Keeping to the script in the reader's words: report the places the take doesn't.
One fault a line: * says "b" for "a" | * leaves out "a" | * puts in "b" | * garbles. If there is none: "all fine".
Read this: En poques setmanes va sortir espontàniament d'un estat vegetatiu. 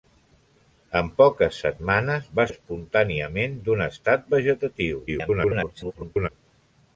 * leaves out "sortir"
* garbles